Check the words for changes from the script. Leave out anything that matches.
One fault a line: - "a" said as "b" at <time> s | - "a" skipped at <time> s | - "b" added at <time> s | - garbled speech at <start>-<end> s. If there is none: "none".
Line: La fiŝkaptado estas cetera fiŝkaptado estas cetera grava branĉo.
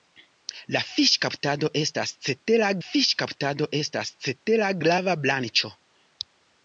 none